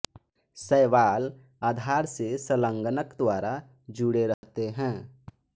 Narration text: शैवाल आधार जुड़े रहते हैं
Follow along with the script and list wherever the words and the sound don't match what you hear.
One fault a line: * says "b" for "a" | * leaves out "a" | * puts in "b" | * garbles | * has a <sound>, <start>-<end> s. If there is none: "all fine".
* puts in "से संलग्नक द्वारा"
* has a dropout, 4.3-4.4 s